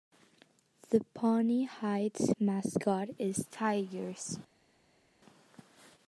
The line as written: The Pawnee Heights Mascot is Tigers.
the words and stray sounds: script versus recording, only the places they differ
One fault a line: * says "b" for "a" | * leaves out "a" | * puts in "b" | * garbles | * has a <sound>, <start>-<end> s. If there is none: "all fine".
all fine